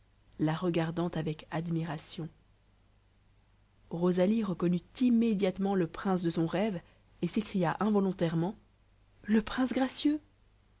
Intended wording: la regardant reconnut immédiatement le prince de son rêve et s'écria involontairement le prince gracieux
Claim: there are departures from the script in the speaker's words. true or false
true